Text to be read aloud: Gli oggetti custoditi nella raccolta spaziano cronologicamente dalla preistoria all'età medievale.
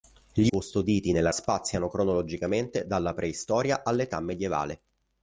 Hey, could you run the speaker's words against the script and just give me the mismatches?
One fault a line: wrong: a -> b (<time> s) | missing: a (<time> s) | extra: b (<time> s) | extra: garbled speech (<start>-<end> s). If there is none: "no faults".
missing: oggetti (0.5 s)
missing: raccolta (1.3 s)